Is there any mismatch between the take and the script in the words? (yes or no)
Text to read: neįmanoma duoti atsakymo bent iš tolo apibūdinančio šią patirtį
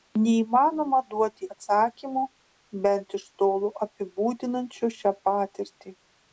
no